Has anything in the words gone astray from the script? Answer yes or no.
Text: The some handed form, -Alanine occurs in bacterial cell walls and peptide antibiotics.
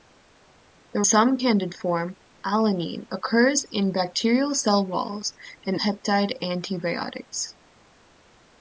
no